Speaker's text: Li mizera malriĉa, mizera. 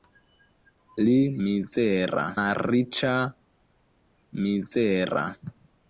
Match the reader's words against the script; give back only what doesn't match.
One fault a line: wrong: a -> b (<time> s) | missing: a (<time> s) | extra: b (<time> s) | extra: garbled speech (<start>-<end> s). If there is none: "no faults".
no faults